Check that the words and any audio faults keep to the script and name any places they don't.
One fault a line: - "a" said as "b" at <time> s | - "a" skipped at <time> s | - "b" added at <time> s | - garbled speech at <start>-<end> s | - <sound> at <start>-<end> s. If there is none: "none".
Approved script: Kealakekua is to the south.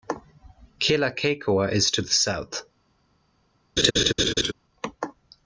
- laugh at 3.8-4.5 s